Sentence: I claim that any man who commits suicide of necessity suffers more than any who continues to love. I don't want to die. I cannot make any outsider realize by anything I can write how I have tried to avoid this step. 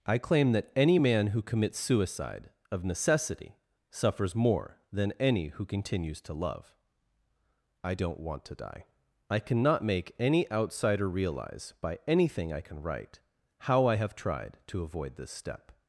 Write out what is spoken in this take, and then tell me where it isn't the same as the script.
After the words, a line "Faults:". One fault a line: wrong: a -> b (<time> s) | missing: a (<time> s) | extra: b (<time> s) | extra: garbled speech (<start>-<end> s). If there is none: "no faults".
I claim that any man who commits suicide of necessity suffers more than any who continues to love. I don't want to die. I cannot make any outsider realize by anything I can write how I have tried to avoid this step.
Faults:
no faults